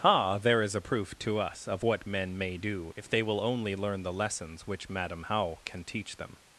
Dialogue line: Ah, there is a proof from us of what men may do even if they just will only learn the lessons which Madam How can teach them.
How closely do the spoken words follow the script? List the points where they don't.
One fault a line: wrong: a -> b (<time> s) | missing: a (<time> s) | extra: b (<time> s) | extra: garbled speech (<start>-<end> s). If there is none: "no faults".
wrong: from -> to (1.2 s)
missing: even (2.9 s)
missing: just (3.2 s)